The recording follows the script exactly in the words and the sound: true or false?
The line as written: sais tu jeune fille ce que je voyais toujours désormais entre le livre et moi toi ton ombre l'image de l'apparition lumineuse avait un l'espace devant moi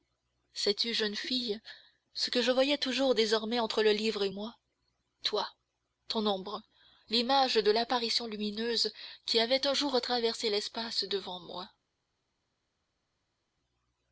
false